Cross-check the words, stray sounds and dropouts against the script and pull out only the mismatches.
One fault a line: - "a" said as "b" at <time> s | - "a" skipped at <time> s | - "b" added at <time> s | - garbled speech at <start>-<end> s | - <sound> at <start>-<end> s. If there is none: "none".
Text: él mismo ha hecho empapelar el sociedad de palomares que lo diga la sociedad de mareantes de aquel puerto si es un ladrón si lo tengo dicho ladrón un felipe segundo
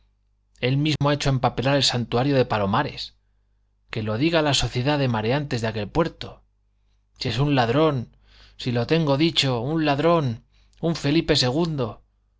- dropout at 1.0-1.0 s
- "sociedad" said as "santuario" at 1.8 s
- "un" added at 9.6 s